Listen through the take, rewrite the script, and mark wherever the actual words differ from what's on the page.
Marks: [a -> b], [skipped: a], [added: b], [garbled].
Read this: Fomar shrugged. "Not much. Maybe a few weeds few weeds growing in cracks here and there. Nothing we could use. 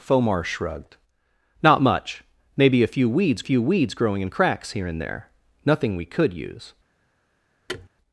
Fomar shrugged. "Not much. Maybe a few weeds few weeds growing in cracks here and there. Nothing we could use.